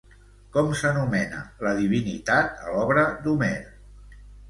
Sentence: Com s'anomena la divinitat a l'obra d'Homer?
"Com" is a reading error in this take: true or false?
false